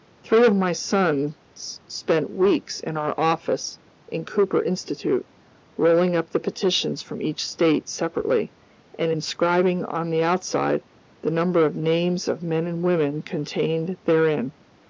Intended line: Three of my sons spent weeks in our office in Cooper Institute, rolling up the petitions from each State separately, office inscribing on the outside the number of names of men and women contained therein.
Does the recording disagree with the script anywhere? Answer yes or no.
yes